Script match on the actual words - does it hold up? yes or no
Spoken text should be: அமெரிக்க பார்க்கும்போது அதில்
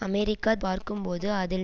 yes